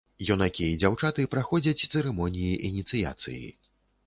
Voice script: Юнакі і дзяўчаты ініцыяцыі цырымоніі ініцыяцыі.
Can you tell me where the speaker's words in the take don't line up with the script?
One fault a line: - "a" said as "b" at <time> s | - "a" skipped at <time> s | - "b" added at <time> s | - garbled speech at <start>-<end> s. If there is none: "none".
- "ініцыяцыі" said as "праходзяць" at 1.3 s